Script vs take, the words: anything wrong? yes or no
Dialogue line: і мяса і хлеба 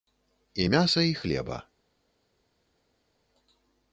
no